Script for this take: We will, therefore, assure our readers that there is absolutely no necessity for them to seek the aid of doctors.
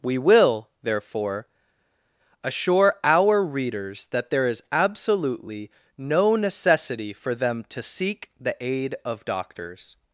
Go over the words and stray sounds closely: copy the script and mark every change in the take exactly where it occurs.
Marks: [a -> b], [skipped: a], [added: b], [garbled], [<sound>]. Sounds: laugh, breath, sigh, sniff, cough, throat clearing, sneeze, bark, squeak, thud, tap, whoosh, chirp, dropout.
We will, therefore, assure our readers that there is absolutely no necessity for them to seek the aid of doctors.